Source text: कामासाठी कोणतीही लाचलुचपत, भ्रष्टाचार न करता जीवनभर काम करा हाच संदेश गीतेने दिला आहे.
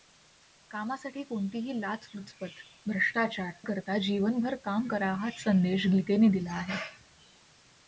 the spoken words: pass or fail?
fail